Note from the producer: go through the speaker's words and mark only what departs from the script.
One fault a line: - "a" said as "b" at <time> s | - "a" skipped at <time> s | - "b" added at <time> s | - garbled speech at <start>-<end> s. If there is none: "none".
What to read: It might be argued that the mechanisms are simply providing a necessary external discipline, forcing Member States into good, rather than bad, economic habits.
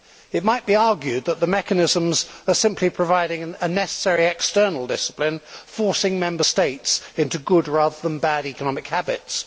none